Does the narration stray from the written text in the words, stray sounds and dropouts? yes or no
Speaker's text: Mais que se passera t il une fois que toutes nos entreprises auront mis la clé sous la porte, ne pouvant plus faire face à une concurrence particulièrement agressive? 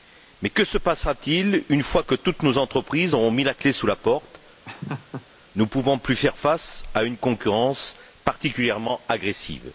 yes